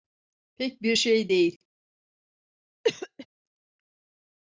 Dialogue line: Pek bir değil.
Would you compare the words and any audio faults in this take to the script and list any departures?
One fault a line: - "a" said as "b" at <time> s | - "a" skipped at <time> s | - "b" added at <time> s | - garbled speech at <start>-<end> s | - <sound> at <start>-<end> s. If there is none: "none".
- "şey" added at 0.9 s
- cough at 2.8-3.3 s